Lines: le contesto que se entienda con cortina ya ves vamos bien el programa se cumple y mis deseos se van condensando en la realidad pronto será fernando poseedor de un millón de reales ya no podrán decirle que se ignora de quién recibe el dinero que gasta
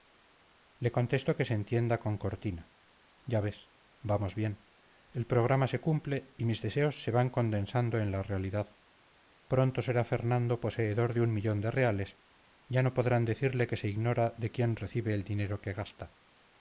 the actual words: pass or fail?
pass